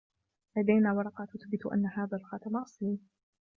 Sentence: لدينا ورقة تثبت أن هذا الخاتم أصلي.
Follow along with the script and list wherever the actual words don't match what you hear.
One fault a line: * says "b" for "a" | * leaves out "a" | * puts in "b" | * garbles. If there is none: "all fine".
all fine